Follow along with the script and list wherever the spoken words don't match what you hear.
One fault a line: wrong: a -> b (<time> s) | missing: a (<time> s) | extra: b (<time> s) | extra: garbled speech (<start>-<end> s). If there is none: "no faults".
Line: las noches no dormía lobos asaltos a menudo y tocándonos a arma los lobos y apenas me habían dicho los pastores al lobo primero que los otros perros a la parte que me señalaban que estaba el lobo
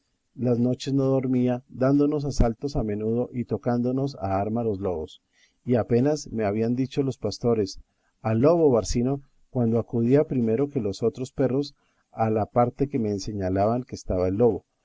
wrong: lobos -> dándonos (1.7 s)
extra: barcino cuando acudía (8.7 s)